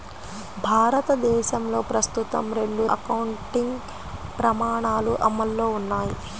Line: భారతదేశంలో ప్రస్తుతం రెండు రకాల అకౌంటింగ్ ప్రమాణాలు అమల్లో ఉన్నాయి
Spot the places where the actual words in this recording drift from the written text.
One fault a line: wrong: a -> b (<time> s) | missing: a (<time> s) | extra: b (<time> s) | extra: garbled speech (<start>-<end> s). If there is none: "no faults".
missing: రకాల (2.9 s)